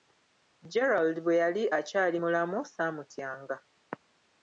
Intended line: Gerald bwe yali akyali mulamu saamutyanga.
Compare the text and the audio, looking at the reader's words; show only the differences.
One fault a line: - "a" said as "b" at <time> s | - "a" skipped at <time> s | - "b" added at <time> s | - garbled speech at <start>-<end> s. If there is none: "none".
none